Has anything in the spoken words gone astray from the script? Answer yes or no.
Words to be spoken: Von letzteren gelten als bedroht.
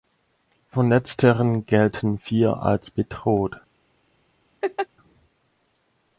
yes